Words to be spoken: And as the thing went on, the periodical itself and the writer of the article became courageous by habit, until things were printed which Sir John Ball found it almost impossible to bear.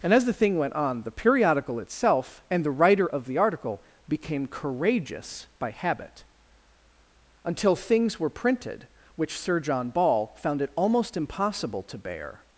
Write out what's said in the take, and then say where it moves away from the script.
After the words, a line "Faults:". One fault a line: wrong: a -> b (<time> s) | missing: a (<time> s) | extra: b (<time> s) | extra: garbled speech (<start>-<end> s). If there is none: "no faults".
And as the thing went on, the periodical itself and the writer of the article became courageous by habit, until things were printed which Sir John Ball found it almost impossible to bear.
Faults:
no faults